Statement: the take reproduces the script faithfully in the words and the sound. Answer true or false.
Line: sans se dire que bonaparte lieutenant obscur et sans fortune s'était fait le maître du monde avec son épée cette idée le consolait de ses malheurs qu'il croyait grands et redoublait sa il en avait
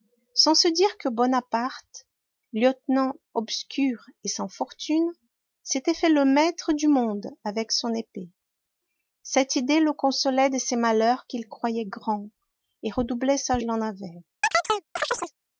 false